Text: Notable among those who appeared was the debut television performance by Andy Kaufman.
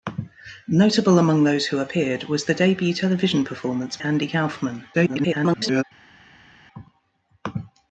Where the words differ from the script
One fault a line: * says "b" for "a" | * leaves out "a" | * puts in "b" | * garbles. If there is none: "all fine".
* leaves out "by"
* garbles